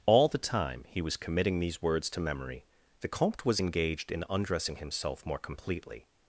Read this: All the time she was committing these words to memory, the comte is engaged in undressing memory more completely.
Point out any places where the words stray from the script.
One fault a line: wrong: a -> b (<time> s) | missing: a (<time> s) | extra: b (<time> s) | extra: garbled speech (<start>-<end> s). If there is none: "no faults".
wrong: she -> he (0.9 s)
wrong: is -> was (3.5 s)
wrong: memory -> himself (4.8 s)